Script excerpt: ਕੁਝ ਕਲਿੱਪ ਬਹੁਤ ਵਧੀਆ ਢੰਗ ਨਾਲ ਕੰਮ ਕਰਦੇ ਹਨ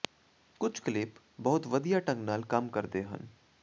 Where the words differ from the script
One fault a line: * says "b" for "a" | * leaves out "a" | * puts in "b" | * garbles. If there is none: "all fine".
all fine